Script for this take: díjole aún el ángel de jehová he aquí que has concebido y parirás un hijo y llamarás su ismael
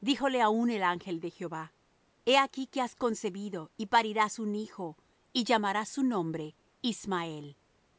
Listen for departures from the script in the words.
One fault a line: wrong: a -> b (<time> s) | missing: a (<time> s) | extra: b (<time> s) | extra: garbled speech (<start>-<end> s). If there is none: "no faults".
extra: nombre (6.0 s)